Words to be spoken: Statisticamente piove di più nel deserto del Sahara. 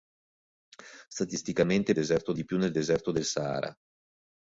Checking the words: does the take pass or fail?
fail